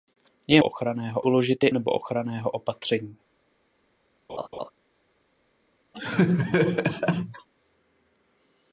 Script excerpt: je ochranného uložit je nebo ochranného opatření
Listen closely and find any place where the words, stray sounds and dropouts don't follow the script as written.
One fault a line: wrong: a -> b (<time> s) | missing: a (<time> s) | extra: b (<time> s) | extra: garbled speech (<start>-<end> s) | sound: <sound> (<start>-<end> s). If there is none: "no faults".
sound: laugh (4.3-4.7 s)
sound: laugh (5.9-7.5 s)